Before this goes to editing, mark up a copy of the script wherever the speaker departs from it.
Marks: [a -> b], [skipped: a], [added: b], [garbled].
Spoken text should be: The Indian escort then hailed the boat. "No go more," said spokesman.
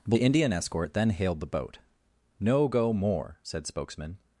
The Indian escort then hailed the boat. "No go more," said spokesman.